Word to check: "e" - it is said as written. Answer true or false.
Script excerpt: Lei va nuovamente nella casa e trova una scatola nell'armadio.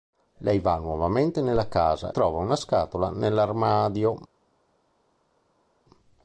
false